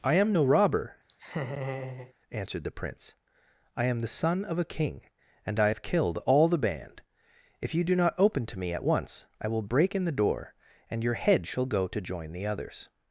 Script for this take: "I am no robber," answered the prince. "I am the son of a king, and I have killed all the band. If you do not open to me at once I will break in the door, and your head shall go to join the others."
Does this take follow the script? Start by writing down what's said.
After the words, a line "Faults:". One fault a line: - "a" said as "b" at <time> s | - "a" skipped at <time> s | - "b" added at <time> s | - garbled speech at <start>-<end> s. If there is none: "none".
"I am no robber," answered the prince. "I am the son of a king, and I have killed all the band. If you do not open to me at once I will break in the door, and your head shall go to join the others."
Faults:
none